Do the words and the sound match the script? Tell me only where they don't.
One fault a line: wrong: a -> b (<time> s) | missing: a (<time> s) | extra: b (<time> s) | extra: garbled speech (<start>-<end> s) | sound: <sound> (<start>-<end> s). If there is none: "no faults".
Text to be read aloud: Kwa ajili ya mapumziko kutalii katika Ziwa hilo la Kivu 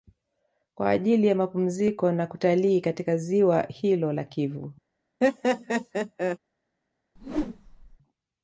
extra: na (2.1 s)
sound: laugh (5.2-6.4 s)
sound: whoosh (7.2-8.0 s)